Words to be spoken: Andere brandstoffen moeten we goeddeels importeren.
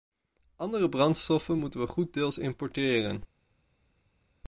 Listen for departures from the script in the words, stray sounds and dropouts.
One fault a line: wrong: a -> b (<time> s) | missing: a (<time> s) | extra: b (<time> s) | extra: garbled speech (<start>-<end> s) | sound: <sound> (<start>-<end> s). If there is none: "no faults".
no faults